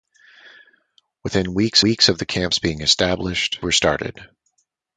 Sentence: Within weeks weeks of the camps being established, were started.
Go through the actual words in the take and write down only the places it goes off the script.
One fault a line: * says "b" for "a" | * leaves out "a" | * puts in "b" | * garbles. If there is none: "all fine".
all fine